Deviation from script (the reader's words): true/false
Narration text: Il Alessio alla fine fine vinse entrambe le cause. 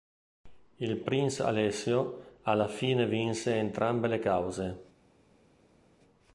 true